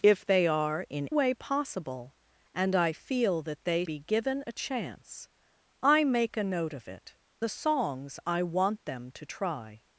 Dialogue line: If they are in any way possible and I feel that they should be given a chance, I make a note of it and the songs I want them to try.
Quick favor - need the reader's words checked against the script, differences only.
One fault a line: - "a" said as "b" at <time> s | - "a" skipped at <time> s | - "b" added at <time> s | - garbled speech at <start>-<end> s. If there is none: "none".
- "any" skipped at 1.1 s
- "should" skipped at 3.8 s
- "and" skipped at 7.2 s